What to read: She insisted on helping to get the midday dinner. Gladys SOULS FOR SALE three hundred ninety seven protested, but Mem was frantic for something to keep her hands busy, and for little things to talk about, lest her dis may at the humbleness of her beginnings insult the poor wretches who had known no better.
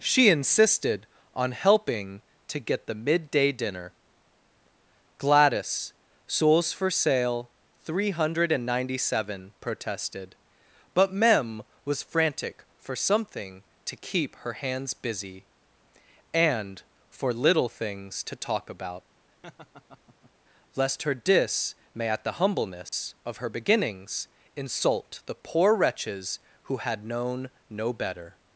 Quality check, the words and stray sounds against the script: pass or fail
fail